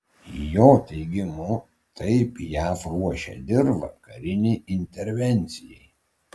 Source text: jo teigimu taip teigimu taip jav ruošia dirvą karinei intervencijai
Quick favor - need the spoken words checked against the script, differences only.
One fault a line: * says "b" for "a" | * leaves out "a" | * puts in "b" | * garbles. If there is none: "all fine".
* leaves out "teigimu taip"